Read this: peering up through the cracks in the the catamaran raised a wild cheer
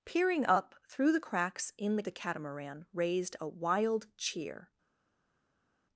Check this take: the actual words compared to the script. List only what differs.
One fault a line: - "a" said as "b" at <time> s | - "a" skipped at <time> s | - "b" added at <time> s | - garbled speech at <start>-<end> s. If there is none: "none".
none